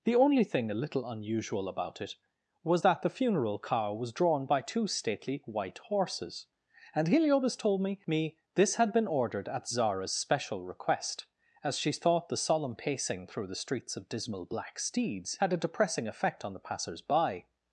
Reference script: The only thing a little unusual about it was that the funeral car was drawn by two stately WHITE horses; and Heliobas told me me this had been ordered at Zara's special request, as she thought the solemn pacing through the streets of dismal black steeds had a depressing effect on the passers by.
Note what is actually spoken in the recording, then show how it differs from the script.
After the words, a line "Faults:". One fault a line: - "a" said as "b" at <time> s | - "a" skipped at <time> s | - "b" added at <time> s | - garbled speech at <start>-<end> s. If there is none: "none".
The only thing a little unusual about it was that the funeral car was drawn by two stately WHITE horses; and Heliobas told me me this had been ordered at Zara's special request, as she thought the solemn pacing through the streets of dismal black steeds had a depressing effect on the passers by.
Faults:
none